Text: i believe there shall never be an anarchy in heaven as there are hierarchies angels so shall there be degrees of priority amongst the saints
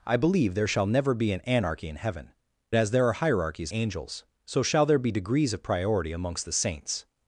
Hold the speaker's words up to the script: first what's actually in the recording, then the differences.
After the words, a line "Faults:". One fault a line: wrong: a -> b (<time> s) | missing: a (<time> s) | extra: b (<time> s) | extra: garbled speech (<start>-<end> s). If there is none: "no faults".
i believe there shall never be an anarchy in heaven as there are hierarchies angels so shall there be degrees of priority amongst the saints
Faults:
no faults